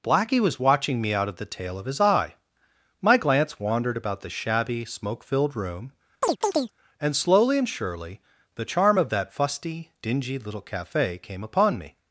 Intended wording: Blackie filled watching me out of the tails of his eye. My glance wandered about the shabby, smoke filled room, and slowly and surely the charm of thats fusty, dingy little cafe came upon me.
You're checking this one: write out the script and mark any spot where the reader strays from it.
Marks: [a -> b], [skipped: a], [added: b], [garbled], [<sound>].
Blackie [filled -> was] watching me out of the [tails -> tail] of his eye. My glance wandered about the shabby, smoke filled room, [chirp] and slowly and surely the charm of [thats -> that] fusty, dingy little cafe came upon me.